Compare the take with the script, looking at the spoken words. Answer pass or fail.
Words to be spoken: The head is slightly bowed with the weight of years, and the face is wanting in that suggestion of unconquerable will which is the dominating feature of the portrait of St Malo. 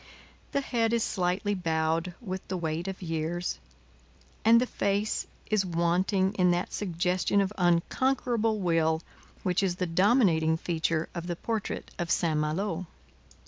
pass